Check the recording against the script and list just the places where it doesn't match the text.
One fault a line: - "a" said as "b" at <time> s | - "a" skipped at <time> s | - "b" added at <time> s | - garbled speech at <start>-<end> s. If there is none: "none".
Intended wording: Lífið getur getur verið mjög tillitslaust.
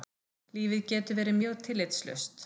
- "getur" skipped at 1.2 s